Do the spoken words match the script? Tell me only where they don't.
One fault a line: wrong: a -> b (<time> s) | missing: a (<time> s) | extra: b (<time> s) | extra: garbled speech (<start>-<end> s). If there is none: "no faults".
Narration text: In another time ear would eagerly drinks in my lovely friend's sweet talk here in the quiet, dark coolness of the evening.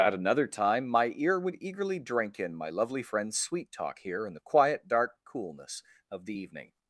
wrong: In -> At (0.0 s)
extra: my (0.9 s)
wrong: drinks -> drink (2.0 s)